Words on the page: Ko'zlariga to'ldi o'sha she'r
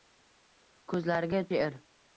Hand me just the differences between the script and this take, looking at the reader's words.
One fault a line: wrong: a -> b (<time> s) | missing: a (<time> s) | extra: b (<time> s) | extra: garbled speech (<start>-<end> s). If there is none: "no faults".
missing: to'ldi o'sha (1.4 s)